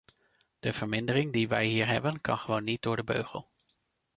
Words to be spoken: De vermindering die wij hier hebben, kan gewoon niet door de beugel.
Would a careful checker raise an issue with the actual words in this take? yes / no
no